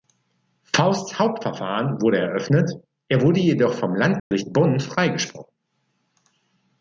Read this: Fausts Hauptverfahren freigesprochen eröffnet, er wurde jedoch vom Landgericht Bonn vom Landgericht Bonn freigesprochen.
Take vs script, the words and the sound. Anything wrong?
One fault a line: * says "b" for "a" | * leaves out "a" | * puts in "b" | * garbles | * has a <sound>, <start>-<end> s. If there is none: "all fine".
* says "wurde" for "freigesprochen"
* has a dropout, 4.2-4.3 s
* leaves out "vom Landgericht Bonn"